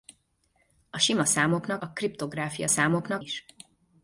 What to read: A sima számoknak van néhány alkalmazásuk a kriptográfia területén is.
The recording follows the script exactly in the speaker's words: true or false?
false